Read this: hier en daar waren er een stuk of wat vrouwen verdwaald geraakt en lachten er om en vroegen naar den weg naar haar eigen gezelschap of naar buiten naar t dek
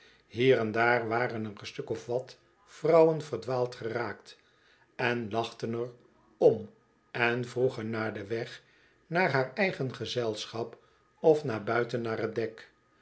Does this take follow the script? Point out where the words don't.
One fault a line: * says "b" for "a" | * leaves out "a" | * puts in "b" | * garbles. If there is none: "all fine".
all fine